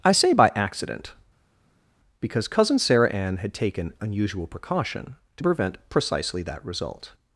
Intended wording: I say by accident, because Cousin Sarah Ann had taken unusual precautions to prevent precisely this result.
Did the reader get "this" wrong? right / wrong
wrong